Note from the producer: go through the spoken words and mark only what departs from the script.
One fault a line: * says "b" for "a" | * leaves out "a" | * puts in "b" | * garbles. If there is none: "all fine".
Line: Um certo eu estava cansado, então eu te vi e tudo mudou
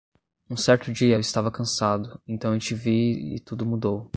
* puts in "dia"